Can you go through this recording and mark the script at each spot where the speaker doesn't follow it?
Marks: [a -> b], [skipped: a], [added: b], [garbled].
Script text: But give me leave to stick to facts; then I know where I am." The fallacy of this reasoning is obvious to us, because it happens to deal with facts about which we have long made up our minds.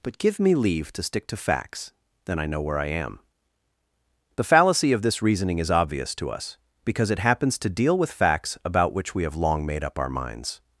But give me leave to stick to facts; then I know where I am." The fallacy of this reasoning is obvious to us, because it happens to deal with facts about which we have long made up our minds.